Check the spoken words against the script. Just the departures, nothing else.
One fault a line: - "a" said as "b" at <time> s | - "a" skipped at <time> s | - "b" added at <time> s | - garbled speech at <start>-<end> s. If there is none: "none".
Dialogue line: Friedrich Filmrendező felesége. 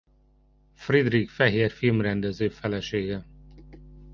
- "Fehér" added at 1.3 s